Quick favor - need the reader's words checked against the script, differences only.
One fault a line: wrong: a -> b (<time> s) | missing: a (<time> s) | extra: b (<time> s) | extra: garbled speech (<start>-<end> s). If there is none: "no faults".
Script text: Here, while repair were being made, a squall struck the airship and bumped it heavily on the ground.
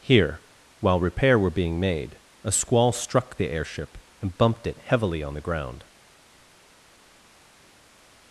no faults